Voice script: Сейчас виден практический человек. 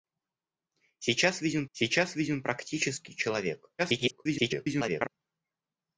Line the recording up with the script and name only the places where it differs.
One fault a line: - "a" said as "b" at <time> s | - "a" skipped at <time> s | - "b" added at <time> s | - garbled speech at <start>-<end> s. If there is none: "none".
- "сейчас виден" added at 1.7 s
- garbled speech at 3.8-5.1 s